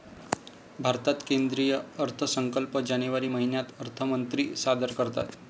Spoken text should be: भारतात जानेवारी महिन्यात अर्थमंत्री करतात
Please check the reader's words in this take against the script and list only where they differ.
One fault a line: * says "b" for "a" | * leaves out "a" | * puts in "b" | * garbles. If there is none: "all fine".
* puts in "केंद्रीय अर्थसंकल्प"
* puts in "सादर"